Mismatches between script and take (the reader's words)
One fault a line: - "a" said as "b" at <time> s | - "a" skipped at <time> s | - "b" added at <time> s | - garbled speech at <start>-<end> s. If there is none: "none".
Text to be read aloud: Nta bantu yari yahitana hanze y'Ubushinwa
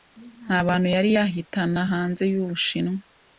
none